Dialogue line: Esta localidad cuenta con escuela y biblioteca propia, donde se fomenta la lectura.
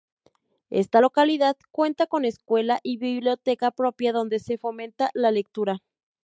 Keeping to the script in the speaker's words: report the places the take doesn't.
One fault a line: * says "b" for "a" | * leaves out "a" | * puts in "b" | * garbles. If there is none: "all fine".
all fine